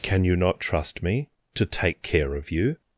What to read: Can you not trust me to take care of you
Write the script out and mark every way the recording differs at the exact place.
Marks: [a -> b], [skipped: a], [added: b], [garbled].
Can you not trust me to take care of you